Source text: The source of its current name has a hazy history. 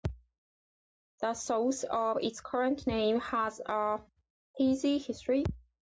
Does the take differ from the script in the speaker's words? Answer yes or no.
no